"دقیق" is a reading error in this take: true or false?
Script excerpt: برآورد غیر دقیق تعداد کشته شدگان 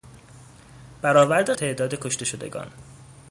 true